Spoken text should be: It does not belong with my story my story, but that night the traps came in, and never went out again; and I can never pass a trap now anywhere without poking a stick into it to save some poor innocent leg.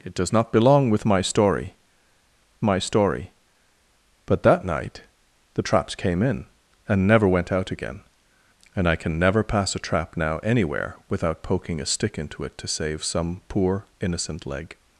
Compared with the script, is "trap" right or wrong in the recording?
right